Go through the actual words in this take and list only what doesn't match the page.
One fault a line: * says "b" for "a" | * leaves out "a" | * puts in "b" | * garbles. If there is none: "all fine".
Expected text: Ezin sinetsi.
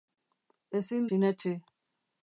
all fine